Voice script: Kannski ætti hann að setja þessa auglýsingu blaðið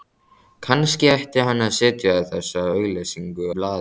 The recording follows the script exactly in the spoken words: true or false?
true